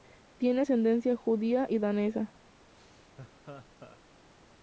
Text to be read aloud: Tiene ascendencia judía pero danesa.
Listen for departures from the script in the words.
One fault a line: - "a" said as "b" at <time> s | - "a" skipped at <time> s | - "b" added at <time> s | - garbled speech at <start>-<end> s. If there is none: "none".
- "pero" said as "y" at 1.7 s